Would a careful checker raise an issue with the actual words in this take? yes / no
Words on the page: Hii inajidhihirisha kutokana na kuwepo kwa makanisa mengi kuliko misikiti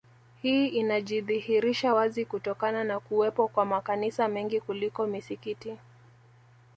yes